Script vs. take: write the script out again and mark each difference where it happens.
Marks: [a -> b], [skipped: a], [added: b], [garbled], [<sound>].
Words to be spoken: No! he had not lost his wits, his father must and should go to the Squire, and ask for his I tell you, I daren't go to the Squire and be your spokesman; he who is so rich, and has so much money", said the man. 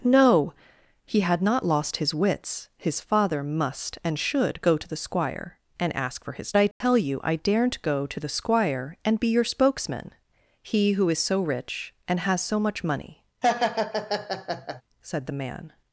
No! he had not lost his wits, his father must and should go to the Squire, and ask for his I tell [dropout] you, I daren't go to the Squire and be your spokesman; he who is so rich, and has so much money", [laugh] said the man.